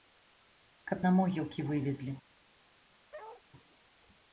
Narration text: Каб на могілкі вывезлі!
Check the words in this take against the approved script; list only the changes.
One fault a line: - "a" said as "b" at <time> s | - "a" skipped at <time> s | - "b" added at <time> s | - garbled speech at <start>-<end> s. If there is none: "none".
none